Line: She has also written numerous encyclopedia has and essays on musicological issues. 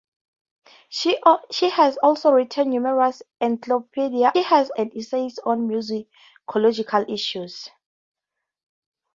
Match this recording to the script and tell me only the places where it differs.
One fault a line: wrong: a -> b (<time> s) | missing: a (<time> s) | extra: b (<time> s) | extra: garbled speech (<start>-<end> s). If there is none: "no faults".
no faults